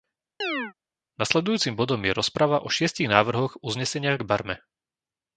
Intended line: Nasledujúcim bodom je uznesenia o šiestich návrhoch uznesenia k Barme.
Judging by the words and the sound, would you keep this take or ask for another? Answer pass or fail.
fail